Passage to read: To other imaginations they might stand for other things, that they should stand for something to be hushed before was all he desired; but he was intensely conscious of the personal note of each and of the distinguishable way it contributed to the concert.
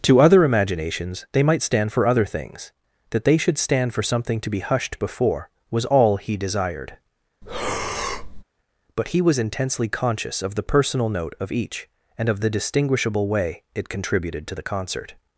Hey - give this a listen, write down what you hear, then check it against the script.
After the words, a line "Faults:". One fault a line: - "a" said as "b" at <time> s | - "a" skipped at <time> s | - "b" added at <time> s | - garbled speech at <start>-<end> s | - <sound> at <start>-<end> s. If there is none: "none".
To other imaginations they might stand for other things, that they should stand for something to be hushed before was all he desired; but he was intensely conscious of the personal note of each and of the distinguishable way it contributed to the concert.
Faults:
- breath at 7.4-8.4 s